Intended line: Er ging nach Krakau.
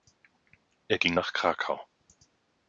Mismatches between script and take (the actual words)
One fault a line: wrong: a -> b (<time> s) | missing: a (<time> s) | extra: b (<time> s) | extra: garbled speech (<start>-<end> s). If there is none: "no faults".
no faults